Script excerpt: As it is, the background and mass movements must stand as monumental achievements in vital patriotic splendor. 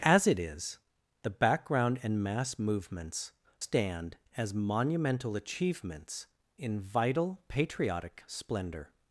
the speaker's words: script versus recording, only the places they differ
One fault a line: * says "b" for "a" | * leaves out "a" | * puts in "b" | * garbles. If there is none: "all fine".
* leaves out "must"